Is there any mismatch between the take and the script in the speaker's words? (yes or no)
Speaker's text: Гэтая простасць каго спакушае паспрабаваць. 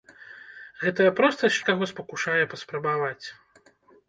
no